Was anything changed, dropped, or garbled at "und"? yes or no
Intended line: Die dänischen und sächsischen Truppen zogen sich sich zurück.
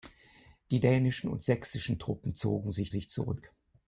no